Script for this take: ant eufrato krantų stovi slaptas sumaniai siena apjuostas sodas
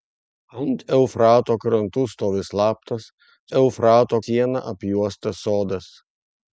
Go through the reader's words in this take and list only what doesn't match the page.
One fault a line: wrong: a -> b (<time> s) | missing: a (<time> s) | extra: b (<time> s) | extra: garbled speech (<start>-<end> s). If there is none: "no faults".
wrong: sumaniai -> eufrato (3.6 s)